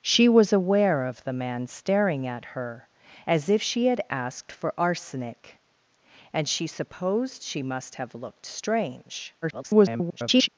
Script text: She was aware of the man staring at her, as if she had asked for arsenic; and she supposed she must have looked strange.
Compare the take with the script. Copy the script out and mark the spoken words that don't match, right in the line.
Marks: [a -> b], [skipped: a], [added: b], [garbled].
She was aware of the man staring at her, as if she had asked for arsenic; and she supposed she must have looked strange. [garbled]